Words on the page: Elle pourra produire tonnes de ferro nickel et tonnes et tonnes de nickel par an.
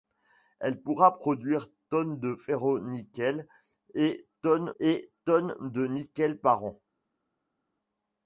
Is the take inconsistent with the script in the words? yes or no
no